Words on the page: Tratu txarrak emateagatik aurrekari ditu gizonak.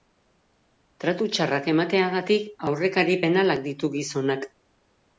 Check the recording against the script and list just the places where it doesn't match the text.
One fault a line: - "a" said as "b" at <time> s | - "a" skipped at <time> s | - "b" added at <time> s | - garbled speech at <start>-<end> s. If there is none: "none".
- "penalak" added at 3.3 s